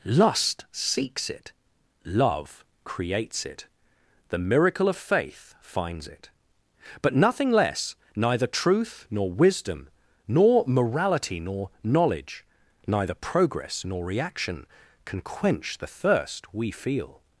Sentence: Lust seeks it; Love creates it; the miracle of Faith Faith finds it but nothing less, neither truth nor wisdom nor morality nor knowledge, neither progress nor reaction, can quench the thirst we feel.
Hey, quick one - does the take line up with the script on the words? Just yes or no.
no